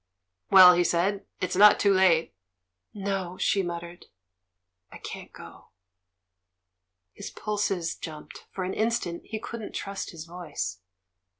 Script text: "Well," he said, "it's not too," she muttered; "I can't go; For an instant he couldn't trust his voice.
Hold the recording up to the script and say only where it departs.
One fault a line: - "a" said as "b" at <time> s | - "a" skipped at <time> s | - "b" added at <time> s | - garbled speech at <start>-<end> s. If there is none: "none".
- "late No" added at 1.9 s
- "His pulses jumped" added at 7.1 s